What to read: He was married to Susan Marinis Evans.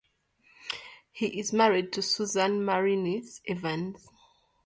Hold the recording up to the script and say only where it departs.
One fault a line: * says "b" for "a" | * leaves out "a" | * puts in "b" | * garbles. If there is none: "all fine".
* says "is" for "was"